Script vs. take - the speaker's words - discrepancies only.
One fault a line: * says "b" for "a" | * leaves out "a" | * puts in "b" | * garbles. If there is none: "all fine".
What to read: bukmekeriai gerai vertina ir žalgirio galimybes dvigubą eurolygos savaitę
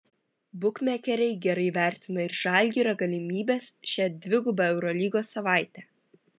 * puts in "šią"